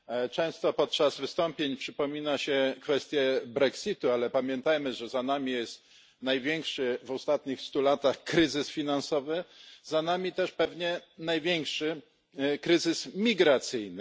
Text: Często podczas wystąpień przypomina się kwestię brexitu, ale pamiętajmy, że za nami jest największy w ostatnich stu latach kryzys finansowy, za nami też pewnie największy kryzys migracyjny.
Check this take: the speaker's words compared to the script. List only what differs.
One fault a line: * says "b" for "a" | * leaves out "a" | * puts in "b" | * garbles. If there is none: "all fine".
all fine